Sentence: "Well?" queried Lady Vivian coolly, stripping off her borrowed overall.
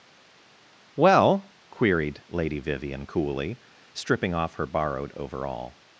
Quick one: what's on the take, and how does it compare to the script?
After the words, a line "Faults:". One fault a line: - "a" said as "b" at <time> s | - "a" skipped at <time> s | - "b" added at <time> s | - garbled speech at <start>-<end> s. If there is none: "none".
"Well?" queried Lady Vivian coolly, stripping off her borrowed overall.
Faults:
none